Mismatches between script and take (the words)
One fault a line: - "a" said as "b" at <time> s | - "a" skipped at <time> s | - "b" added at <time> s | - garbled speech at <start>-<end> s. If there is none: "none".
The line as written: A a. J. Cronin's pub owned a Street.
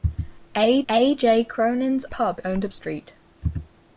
none